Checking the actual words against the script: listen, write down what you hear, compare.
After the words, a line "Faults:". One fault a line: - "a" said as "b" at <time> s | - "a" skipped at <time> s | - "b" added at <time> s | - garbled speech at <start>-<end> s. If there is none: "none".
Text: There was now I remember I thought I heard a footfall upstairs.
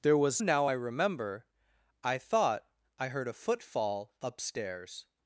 There was now I remember I thought I heard a footfall upstairs.
Faults:
none